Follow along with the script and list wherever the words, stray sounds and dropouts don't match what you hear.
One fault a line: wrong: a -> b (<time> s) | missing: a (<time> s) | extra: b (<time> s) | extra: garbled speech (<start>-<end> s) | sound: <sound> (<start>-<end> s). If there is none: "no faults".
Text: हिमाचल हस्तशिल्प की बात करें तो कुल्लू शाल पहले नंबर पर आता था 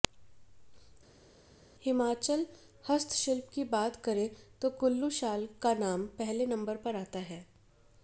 extra: का नाम (5.6 s)
wrong: था -> है (7.2 s)